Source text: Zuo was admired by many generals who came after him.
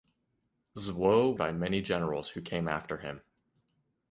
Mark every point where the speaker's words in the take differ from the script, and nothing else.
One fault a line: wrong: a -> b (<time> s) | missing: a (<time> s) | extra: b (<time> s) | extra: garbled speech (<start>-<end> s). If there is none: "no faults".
missing: was admired (1.4 s)